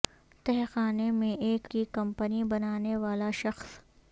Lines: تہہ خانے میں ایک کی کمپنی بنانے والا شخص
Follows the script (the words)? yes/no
yes